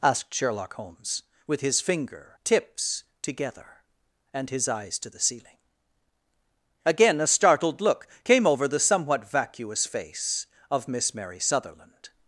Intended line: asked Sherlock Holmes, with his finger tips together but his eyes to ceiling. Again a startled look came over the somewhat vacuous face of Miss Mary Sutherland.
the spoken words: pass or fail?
fail